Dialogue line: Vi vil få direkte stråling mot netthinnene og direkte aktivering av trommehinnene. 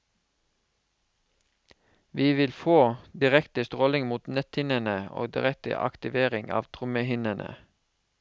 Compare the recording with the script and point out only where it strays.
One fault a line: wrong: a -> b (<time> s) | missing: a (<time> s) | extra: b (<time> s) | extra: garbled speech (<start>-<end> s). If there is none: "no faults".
no faults